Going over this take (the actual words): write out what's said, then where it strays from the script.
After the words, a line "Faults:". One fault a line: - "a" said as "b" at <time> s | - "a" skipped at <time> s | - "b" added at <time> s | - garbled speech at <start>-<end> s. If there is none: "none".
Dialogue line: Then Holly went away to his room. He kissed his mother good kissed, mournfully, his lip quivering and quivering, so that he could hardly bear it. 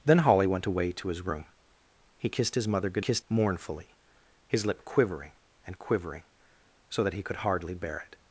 Then Holly went away to his room. He kissed his mother good kissed, mournfully, his lip quivering and quivering, so that he could hardly bear it.
Faults:
none